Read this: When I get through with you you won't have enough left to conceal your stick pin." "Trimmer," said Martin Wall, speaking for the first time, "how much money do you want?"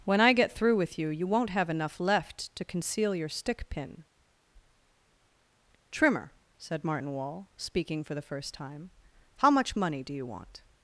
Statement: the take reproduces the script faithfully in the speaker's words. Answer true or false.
true